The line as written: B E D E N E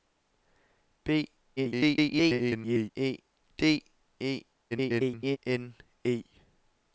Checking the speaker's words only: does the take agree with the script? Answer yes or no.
no